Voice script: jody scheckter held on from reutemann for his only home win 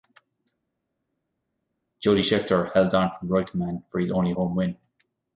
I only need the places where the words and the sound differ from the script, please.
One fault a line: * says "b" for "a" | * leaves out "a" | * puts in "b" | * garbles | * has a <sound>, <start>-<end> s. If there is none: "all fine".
all fine